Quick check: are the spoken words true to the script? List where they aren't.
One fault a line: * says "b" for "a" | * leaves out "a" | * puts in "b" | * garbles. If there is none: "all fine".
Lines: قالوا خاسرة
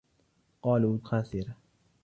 all fine